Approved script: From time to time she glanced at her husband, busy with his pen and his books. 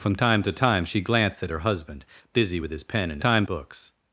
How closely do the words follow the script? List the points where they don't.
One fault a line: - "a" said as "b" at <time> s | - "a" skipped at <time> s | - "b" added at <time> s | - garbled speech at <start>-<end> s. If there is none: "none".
- "his" said as "time" at 3.2 s